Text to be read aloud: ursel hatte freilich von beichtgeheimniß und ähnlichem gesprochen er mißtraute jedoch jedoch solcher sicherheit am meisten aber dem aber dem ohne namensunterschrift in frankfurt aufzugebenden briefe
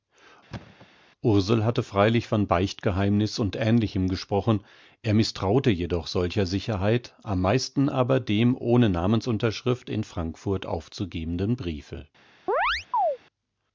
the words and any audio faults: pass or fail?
fail